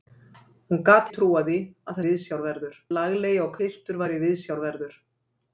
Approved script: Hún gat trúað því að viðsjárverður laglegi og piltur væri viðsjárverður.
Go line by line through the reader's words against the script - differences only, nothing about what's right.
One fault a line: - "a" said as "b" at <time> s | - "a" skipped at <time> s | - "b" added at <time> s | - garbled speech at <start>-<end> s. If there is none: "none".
none